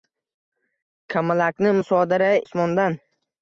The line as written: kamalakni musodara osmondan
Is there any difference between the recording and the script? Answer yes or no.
no